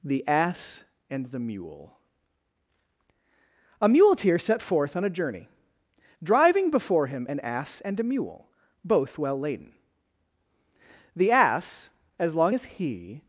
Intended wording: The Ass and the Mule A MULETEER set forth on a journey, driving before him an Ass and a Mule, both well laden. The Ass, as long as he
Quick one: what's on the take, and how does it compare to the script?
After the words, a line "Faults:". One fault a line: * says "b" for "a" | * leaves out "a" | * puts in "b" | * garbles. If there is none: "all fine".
The Ass and the Mule A MULETEER set forth on a journey, driving before him an Ass and a Mule, both well laden. The Ass, as long as he
Faults:
all fine